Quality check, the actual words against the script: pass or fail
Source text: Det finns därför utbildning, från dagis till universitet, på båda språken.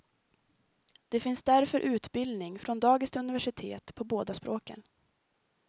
pass